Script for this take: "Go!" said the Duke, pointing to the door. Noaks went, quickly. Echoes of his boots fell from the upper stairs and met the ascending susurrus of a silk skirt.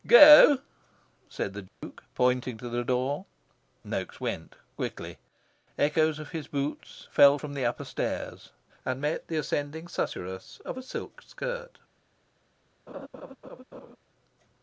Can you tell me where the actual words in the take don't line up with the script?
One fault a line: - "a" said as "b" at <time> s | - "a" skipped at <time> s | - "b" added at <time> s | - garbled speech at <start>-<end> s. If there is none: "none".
none